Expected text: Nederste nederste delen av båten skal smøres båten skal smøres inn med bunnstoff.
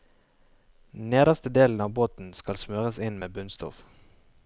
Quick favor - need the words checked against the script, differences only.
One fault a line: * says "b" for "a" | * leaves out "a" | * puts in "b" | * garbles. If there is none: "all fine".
* leaves out "nederste"
* leaves out "båten skal smøres"